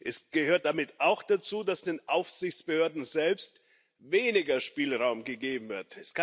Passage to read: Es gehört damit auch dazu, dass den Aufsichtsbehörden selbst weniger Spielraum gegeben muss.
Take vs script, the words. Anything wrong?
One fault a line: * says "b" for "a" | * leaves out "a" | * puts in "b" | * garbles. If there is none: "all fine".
* says "wird" for "muss"